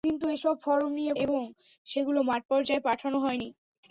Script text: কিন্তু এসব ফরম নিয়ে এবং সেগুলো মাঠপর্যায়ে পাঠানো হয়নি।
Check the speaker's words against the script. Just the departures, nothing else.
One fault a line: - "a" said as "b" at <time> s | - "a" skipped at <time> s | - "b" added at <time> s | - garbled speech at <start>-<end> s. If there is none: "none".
none